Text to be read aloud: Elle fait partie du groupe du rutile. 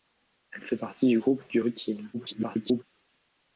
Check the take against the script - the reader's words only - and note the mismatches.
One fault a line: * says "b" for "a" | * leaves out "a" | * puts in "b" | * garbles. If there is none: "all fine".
* garbles